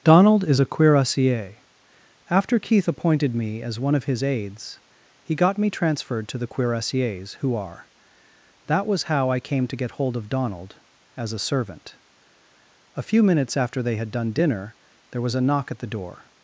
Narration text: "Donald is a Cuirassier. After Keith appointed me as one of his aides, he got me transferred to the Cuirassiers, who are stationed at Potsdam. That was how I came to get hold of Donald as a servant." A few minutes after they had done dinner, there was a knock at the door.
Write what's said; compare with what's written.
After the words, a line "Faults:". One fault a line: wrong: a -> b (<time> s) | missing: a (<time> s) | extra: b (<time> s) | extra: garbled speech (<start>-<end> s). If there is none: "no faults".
"Donald is a Cuirassier. After Keith appointed me as one of his aides, he got me transferred to the Cuirassiers, who are. That was how I came to get hold of Donald as a servant." A few minutes after they had done dinner, there was a knock at the door.
Faults:
missing: stationed at Potsdam (7.9 s)